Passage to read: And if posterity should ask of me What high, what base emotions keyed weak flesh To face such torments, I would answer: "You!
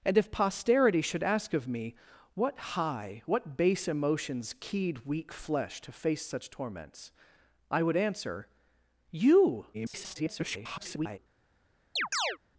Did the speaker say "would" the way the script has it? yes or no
yes